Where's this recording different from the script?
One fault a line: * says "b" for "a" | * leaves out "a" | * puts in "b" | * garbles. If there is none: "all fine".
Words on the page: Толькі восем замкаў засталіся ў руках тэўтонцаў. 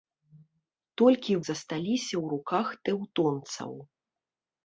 * leaves out "восем замкаў"